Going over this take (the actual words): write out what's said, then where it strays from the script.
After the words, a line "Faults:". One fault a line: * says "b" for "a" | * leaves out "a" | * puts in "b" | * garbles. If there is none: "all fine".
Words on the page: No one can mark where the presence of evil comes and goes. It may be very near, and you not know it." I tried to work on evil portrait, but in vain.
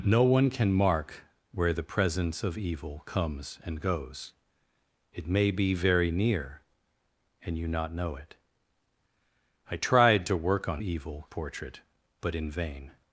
No one can mark where the presence of evil comes and goes. It may be very near, and you not know it." I tried to work on evil portrait, but in vain.
Faults:
all fine